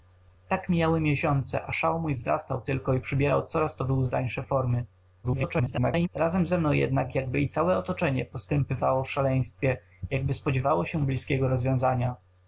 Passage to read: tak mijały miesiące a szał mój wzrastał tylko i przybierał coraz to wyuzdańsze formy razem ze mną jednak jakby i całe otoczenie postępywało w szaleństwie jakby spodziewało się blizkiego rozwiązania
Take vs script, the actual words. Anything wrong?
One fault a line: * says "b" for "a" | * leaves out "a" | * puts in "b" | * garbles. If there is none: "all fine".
* garbles